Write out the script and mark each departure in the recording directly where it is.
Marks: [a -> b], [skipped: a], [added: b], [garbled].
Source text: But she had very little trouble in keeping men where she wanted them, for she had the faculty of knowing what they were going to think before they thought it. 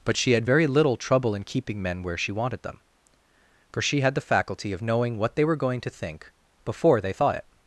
But she had very little trouble in keeping men where she wanted them, for she had the faculty of knowing what they were going to think before they thought it.